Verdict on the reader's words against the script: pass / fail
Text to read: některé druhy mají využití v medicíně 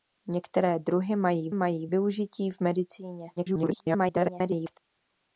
fail